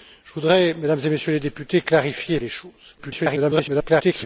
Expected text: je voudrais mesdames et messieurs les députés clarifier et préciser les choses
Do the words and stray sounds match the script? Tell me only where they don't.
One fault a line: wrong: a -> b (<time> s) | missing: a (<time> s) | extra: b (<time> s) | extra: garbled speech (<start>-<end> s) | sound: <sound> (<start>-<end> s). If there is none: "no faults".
missing: préciser (2.4 s)
extra: garbled speech (3.0-4.3 s)